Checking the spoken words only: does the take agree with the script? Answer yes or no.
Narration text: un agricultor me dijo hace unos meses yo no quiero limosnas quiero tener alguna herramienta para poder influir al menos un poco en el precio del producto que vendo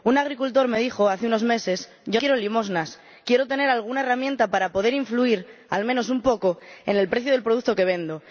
no